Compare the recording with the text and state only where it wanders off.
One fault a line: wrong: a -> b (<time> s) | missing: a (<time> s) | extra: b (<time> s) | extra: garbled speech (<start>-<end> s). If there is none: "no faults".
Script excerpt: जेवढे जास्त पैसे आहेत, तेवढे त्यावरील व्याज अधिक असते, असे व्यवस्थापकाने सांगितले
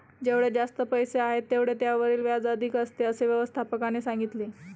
no faults